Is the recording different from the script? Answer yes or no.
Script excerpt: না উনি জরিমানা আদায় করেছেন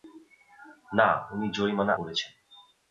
yes